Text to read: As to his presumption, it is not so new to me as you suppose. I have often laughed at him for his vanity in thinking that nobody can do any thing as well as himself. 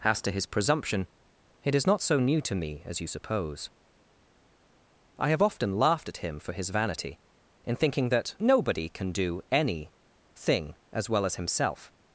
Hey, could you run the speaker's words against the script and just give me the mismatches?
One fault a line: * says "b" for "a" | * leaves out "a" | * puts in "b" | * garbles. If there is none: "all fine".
all fine